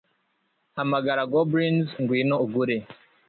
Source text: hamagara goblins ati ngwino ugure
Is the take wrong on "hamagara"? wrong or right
right